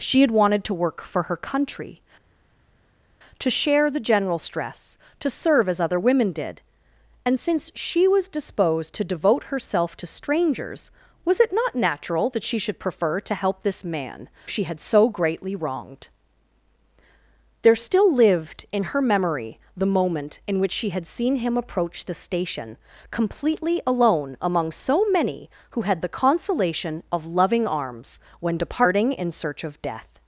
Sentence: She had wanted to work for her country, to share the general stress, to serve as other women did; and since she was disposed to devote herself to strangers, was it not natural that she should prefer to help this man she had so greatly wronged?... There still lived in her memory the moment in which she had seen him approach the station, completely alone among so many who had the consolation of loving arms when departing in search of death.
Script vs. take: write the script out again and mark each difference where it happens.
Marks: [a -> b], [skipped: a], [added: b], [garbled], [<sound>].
She had wanted to work for her country, to share the general stress, to serve as other women did; and since she was disposed to devote herself to strangers, was it not natural that she should prefer to help this man she had so greatly wronged?... There still lived in her memory the moment in which she had seen him approach the station, completely alone among so many who had the consolation of loving arms when departing in search of death.